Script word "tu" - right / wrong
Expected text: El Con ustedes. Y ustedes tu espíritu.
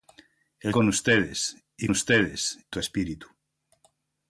right